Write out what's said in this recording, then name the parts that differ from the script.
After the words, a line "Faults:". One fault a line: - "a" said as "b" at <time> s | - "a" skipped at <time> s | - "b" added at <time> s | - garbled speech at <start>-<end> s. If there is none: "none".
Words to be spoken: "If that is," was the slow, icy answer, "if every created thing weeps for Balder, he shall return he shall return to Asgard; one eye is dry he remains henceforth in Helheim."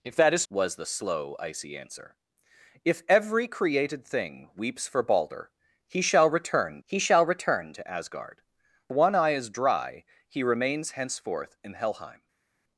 "If that is," was the slow, icy answer, "if every created thing weeps for Balder, he shall return he shall return to Asgard; one eye is dry he remains henceforth in Helheim."
Faults:
none